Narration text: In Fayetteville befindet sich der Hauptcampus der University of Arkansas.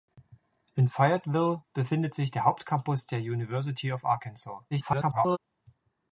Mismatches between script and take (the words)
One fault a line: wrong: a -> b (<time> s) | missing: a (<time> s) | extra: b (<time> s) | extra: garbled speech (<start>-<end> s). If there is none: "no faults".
extra: garbled speech (4.7-5.4 s)